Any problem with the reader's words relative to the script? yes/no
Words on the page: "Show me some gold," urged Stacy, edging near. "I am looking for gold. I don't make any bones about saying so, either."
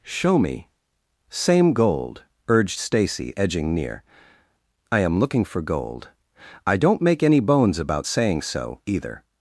yes